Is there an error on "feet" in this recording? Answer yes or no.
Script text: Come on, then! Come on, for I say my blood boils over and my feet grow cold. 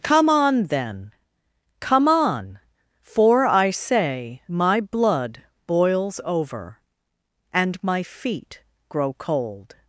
no